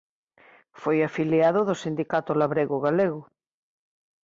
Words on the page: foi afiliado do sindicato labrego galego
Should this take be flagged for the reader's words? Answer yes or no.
no